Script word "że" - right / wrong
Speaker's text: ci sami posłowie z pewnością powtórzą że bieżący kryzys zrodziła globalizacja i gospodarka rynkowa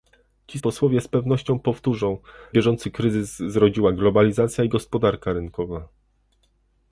wrong